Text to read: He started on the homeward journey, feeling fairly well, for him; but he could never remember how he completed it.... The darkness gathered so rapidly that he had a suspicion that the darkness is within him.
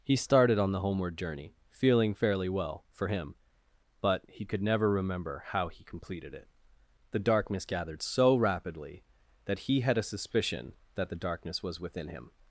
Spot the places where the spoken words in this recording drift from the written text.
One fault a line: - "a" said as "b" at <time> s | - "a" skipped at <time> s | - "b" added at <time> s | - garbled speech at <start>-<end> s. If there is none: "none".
- "is" said as "was" at 11.6 s